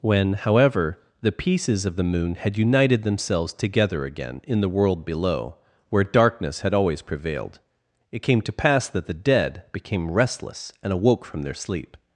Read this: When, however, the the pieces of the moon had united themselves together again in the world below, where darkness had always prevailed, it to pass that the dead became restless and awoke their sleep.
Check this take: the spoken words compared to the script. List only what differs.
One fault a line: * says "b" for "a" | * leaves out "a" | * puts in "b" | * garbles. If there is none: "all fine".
* leaves out "the"
* puts in "came"
* puts in "from"